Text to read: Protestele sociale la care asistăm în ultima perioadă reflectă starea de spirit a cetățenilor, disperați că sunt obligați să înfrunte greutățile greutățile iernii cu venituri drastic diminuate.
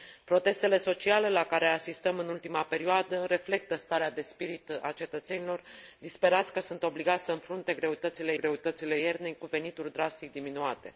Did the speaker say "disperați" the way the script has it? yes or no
yes